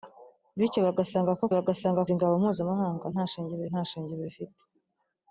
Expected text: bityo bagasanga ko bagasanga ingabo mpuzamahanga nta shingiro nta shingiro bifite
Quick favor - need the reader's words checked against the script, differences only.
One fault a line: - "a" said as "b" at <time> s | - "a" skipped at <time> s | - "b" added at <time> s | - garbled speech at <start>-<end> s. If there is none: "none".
none